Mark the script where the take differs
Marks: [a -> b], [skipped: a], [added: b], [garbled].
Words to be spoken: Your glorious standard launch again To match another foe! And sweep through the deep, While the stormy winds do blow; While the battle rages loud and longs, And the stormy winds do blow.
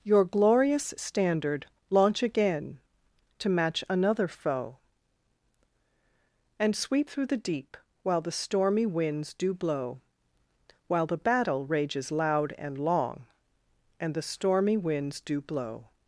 Your glorious standard launch again To match another foe! And sweep through the deep, While the stormy winds do blow; While the battle rages loud and [longs, -> long] And the stormy winds do blow.